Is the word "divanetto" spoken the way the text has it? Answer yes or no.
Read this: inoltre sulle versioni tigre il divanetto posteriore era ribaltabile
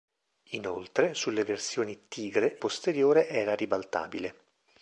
no